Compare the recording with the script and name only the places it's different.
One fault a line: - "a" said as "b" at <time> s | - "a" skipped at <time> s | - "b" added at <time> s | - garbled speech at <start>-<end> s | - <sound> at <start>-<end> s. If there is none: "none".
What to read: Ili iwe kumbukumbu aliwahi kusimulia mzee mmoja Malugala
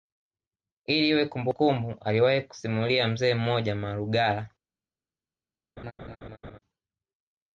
- laugh at 5.8-6.6 s